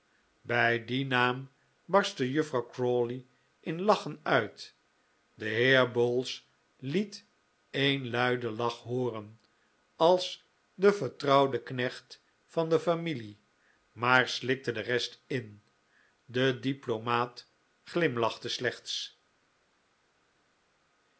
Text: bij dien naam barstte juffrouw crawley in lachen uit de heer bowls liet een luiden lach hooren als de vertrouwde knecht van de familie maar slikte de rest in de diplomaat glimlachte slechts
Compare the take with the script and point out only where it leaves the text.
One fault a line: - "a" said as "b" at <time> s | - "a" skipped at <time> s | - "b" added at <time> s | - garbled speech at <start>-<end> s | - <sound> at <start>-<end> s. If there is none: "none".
none